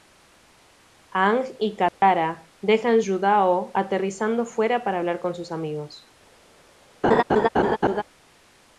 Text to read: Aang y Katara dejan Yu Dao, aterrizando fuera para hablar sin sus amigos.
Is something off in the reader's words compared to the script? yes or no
yes